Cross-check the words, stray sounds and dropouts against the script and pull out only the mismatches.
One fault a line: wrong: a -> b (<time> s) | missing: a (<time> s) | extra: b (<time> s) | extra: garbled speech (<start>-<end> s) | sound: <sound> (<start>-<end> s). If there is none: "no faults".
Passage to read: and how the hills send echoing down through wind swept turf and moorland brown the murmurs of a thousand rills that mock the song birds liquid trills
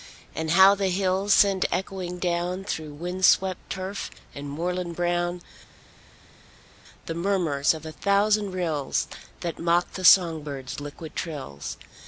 no faults